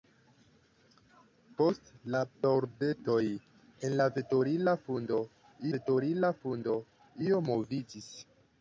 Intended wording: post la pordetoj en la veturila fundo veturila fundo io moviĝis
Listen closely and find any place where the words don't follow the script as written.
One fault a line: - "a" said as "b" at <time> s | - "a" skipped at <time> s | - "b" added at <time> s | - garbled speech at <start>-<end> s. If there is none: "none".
none